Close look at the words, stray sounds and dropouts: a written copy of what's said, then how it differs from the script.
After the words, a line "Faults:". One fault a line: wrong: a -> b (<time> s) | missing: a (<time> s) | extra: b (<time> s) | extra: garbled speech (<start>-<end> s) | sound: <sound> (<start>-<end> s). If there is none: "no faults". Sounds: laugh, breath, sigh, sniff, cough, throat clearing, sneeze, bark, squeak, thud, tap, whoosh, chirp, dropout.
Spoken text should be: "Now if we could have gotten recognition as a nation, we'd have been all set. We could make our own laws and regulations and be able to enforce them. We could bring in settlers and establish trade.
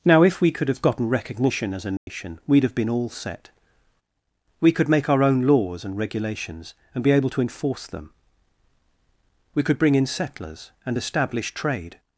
"Now if we could have gotten recognition as a nation, we'd have been all set. We could make our own laws and regulations and be able to enforce them. We could bring in settlers and establish trade.
Faults:
sound: dropout (2.0-2.1 s)